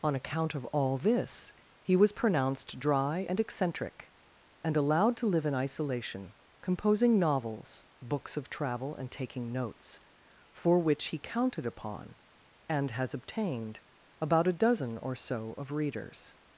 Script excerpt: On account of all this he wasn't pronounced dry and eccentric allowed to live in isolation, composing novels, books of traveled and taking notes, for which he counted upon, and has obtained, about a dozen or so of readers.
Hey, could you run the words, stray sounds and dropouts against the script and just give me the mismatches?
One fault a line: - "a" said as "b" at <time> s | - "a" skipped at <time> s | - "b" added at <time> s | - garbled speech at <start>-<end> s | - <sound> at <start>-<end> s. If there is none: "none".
- "wasn't" said as "was" at 1.9 s
- "and" added at 4.6 s
- "traveled" said as "travel" at 8.5 s